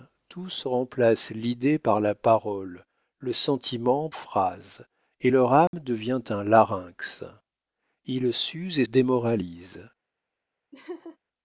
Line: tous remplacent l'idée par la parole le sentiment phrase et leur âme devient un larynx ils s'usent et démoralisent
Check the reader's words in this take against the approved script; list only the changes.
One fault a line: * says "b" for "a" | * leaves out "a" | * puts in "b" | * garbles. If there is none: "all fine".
all fine